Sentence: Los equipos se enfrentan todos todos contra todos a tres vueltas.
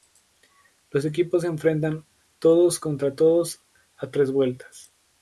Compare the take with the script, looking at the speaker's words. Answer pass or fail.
fail